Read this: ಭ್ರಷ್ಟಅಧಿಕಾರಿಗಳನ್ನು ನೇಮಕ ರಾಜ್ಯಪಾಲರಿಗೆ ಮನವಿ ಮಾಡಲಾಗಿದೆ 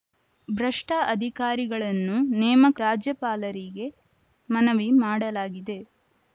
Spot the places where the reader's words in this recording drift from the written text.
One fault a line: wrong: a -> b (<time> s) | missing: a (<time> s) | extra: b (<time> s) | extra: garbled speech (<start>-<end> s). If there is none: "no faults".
no faults